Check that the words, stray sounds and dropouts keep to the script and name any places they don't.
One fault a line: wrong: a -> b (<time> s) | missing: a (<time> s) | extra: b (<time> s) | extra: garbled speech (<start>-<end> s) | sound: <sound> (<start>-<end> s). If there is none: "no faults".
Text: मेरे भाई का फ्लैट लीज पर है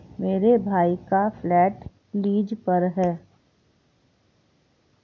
no faults